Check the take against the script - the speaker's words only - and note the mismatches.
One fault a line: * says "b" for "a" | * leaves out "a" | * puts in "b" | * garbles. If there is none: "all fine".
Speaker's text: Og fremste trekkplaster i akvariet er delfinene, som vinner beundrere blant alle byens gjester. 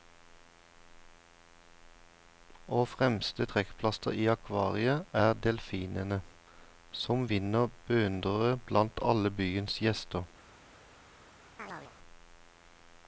all fine